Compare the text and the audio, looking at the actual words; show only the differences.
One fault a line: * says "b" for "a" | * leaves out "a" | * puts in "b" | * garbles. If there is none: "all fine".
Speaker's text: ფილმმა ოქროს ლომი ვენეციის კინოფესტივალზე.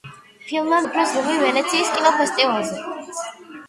all fine